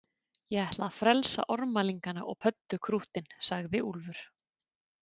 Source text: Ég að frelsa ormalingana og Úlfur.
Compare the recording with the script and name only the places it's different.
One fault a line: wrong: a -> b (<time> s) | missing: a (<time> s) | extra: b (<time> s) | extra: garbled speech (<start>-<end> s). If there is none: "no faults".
extra: ætla (0.7 s)
extra: pöddukrúttin sagði (2.4 s)